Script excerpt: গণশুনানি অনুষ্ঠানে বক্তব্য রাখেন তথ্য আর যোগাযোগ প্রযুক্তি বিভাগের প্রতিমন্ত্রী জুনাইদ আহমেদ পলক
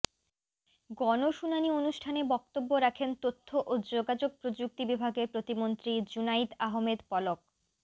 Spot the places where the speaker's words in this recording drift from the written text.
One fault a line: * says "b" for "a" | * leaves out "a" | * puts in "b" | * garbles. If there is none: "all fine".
* says "ও" for "আর"